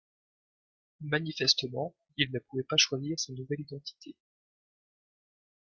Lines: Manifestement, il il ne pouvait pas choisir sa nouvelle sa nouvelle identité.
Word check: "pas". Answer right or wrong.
right